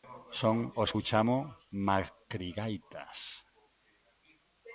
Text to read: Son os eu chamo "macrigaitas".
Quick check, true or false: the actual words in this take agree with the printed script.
true